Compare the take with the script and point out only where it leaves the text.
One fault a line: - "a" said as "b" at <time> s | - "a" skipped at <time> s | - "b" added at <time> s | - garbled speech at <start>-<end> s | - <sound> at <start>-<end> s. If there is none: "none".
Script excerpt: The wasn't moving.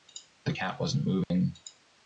- "cat" added at 0.5 s
- dropout at 1.2-1.3 s